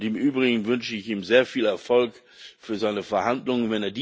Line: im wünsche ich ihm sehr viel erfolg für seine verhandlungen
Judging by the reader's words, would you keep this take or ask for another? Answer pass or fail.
fail